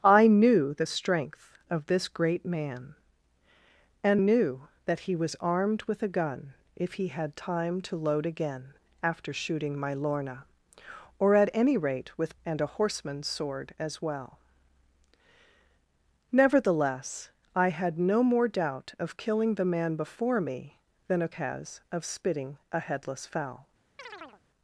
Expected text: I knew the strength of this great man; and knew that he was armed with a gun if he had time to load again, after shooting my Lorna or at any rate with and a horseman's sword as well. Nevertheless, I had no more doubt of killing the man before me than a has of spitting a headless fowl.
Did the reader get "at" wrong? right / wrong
right